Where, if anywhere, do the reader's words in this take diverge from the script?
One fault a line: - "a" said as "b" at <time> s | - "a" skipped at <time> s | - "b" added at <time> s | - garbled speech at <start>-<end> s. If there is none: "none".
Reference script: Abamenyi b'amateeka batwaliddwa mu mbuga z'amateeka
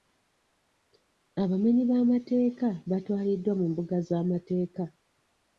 none